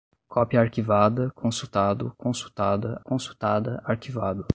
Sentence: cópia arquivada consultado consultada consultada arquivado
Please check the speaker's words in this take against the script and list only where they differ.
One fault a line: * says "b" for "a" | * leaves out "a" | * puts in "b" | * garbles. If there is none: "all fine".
all fine